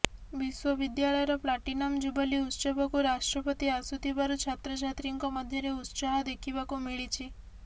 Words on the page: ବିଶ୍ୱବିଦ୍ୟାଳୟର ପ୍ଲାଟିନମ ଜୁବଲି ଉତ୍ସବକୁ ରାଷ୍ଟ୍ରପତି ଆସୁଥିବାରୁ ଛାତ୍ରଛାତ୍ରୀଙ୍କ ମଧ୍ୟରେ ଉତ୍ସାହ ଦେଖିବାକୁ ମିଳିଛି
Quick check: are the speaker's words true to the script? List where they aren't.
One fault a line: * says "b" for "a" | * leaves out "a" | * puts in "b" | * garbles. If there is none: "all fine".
all fine